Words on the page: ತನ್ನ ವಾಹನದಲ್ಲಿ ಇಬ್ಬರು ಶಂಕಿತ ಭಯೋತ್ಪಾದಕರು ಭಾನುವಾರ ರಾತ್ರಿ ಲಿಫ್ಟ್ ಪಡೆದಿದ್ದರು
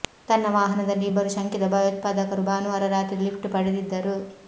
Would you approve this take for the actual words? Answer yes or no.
yes